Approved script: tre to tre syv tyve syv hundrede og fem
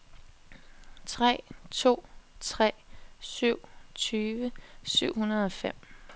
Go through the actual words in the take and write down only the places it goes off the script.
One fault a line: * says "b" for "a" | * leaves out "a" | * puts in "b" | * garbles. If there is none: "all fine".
all fine